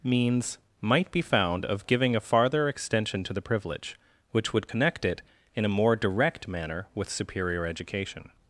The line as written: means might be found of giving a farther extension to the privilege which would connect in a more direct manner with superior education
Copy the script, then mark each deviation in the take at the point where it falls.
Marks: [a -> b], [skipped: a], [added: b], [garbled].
means might be found of giving a farther extension to the privilege which would connect [added: it] in a more direct manner with superior education